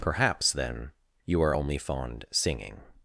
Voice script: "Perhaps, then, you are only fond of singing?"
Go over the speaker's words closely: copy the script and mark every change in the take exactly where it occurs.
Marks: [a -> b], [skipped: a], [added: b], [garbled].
"Perhaps, then, you are only fond [skipped: of] singing?"